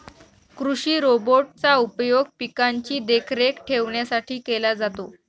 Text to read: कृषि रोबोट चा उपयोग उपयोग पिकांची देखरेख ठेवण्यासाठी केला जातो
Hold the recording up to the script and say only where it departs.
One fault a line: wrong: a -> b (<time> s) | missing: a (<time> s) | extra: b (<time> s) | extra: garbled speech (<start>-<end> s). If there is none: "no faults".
missing: उपयोग (2.3 s)